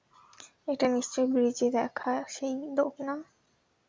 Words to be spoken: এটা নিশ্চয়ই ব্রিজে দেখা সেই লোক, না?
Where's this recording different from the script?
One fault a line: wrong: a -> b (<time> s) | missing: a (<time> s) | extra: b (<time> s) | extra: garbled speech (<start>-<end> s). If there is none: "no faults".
no faults